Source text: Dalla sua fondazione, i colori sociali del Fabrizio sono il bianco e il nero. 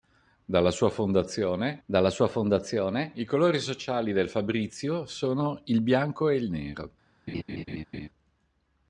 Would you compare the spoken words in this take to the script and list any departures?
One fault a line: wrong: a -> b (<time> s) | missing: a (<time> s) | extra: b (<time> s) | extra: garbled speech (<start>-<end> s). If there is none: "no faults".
extra: dalla sua fondazione (1.8 s)